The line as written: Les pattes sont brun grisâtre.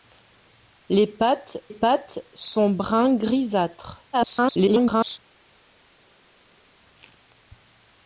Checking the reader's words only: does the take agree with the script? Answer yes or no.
no